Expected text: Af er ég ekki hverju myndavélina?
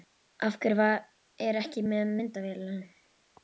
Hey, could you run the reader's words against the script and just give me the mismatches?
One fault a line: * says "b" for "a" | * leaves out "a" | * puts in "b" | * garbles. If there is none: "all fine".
* puts in "hverju"
* says "með" for "hverju"